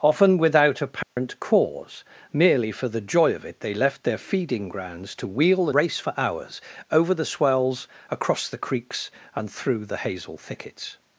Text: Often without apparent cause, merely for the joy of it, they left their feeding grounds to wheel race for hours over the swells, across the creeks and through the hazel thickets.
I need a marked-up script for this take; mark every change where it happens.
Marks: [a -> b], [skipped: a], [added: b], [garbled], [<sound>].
Often without apparent [dropout] cause, merely for the joy of it, they left their feeding grounds to wheel race for hours over the swells, across the creeks and through the hazel thickets.